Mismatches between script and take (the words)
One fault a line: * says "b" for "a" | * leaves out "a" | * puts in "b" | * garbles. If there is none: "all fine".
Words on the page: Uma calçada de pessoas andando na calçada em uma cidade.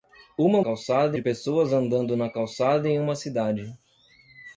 all fine